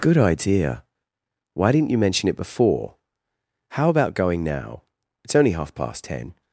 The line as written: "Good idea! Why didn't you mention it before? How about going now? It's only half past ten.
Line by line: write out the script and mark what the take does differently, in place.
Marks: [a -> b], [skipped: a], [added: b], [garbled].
"Good idea! Why didn't you mention it before? How about going now? It's only half past ten.